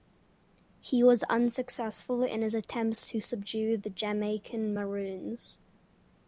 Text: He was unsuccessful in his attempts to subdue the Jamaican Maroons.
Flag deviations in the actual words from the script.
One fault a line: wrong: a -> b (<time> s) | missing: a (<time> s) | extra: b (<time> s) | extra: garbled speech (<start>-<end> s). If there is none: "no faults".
no faults